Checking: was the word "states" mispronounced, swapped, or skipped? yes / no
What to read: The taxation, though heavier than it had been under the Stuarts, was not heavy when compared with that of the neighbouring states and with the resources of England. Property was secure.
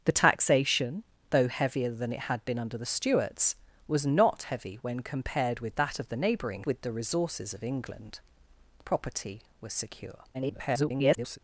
yes